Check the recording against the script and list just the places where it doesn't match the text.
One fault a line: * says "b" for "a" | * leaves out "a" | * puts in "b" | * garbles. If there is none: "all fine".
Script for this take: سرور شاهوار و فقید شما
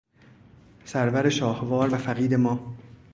* says "ما" for "شما"